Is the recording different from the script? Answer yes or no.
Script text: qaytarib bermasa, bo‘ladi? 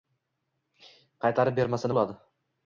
no